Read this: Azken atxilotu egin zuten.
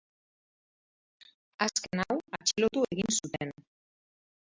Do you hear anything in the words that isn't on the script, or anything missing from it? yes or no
yes